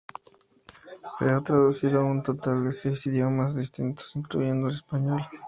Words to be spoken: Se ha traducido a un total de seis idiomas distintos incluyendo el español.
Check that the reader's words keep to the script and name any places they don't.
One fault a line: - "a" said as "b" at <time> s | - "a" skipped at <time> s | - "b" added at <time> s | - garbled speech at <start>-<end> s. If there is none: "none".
none